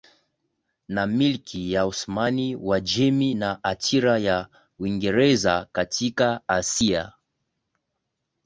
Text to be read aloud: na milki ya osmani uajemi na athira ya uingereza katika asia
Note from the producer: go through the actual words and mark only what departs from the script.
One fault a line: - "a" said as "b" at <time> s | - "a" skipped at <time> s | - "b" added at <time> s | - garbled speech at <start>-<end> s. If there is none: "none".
none